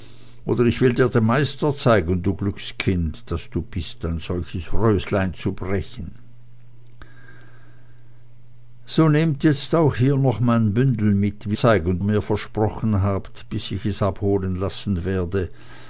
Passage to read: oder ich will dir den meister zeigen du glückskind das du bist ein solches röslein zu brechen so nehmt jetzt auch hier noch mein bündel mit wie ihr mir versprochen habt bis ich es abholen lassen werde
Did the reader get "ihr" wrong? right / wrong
wrong